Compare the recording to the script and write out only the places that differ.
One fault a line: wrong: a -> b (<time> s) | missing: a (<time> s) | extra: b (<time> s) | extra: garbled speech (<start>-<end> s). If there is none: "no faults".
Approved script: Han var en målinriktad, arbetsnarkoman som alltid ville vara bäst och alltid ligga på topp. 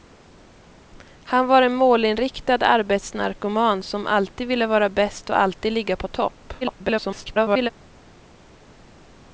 extra: garbled speech (6.6-7.7 s)